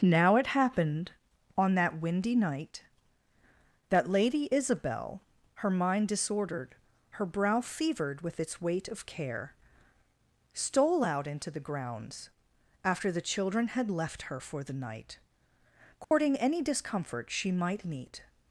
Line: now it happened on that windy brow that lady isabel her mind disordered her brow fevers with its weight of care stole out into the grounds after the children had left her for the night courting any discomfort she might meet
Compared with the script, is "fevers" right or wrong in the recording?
wrong